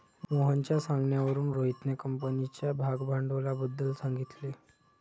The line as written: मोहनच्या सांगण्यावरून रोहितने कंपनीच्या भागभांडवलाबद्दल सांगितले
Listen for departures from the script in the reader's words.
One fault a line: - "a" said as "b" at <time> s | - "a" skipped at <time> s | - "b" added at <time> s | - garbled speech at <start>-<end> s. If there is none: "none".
none